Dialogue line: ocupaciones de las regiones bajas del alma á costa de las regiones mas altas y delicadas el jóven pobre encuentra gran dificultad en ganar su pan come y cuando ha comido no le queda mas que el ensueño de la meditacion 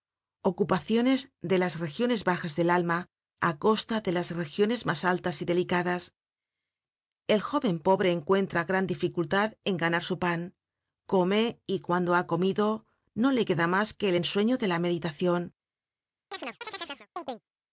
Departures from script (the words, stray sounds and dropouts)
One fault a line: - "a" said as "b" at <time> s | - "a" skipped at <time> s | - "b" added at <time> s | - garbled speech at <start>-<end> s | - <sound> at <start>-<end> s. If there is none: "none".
- chirp at 16.3-17.4 s